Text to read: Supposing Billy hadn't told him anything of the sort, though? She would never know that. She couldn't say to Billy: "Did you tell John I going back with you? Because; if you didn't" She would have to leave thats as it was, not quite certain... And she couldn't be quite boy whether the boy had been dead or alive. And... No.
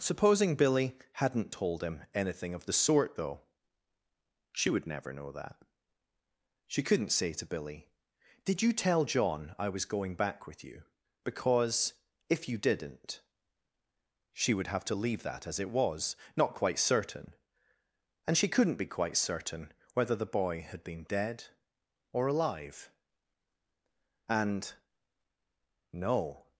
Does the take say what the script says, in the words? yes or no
no